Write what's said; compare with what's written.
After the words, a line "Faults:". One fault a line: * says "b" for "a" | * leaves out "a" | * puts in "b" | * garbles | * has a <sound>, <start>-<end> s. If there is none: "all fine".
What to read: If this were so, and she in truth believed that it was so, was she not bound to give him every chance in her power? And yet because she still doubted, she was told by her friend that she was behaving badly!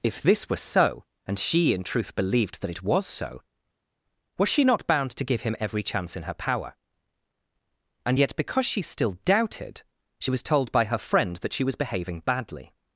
If this were so, and she in truth believed that it was so, was she not bound to give him every chance in her power? And yet because she still doubted, she was told by her friend that she was behaving badly!
Faults:
all fine